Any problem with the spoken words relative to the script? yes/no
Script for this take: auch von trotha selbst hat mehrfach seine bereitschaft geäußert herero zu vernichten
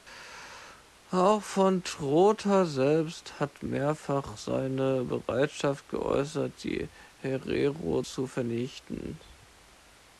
yes